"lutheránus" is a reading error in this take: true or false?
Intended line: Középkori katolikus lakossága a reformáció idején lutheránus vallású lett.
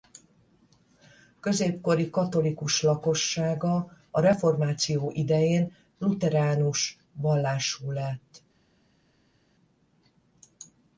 false